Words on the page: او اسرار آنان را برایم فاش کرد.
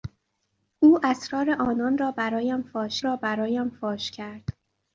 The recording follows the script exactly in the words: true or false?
false